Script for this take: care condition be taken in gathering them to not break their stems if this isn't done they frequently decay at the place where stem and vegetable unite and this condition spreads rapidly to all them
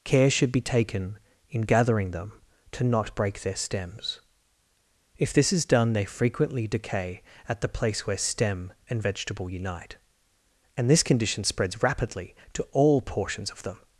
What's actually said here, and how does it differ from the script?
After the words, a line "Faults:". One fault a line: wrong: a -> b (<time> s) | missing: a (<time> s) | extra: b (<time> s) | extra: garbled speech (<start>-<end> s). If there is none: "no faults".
care should be taken in gathering them to not break their stems if this is done they frequently decay at the place where stem and vegetable unite and this condition spreads rapidly to all portions of them
Faults:
wrong: condition -> should (0.3 s)
wrong: isn't -> is (5.5 s)
extra: portions of (13.0 s)